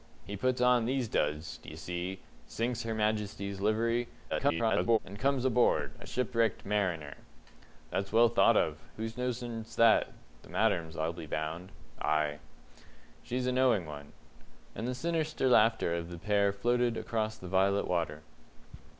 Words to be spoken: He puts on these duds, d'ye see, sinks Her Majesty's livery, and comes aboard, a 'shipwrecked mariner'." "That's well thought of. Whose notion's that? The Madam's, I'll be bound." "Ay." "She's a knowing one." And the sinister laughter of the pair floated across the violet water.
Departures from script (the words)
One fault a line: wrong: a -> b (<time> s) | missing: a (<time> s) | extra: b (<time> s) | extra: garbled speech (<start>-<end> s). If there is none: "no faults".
extra: garbled speech (4.3-5.0 s)